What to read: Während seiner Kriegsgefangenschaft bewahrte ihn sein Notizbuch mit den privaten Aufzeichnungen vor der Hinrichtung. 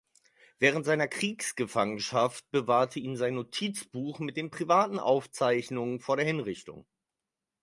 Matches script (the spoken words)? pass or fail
pass